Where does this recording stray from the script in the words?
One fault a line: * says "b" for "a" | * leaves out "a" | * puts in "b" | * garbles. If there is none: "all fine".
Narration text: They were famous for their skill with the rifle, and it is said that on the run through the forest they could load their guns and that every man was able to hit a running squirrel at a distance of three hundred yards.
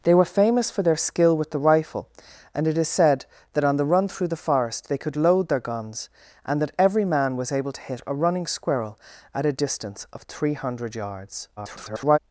* garbles